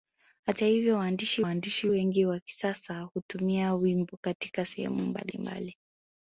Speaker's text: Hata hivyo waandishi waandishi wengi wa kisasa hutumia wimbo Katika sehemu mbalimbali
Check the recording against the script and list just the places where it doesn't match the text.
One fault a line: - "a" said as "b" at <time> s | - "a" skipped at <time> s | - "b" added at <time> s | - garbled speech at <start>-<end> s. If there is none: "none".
none